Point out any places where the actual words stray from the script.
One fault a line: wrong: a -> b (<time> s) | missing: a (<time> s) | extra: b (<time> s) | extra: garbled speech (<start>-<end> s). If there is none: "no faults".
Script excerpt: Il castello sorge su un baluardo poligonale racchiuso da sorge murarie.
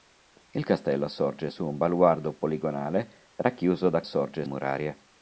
no faults